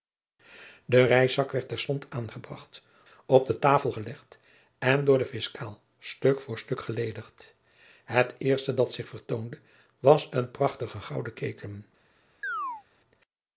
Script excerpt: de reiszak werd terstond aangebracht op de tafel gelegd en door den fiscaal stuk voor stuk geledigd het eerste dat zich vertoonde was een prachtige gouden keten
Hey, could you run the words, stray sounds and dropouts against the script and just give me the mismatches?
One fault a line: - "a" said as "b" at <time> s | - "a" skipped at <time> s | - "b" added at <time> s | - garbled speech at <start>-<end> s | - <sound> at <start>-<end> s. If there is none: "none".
- chirp at 12.4-12.8 s